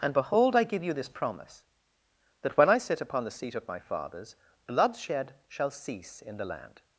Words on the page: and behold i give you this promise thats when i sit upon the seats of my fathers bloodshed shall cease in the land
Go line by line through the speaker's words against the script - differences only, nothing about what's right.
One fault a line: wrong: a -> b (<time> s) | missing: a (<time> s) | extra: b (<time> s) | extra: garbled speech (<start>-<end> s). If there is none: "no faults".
wrong: thats -> that (2.4 s)
wrong: seats -> seat (3.3 s)